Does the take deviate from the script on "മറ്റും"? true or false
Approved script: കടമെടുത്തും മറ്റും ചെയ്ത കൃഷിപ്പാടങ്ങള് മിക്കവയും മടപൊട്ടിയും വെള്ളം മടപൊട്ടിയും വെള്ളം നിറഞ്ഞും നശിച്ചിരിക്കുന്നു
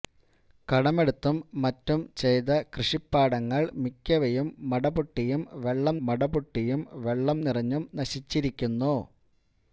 false